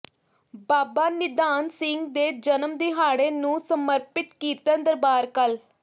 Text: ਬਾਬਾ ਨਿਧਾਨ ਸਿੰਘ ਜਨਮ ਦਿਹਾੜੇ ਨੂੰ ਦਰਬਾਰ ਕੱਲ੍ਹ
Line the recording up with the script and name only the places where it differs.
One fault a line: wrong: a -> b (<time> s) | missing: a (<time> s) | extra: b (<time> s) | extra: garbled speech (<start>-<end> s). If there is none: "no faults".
extra: ਦੇ (2.1 s)
extra: ਸਮਰਪਿਤ ਕੀਰਤਨ (3.6 s)